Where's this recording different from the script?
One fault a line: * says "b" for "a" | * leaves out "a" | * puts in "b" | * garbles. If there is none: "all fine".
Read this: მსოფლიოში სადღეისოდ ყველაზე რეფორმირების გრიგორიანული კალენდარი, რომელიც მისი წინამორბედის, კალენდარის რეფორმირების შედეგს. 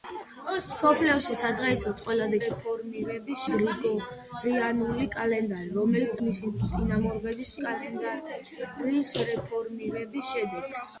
all fine